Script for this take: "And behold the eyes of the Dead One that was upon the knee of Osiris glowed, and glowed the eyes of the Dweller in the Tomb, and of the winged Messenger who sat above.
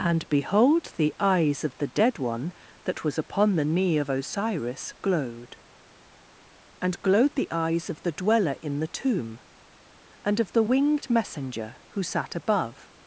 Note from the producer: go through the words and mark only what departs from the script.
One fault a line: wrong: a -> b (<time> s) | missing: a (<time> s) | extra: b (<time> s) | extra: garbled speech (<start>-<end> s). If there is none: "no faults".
no faults